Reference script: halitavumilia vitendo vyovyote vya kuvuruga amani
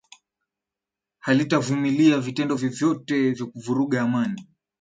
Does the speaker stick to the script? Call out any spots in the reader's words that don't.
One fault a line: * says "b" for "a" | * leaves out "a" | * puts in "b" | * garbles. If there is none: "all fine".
all fine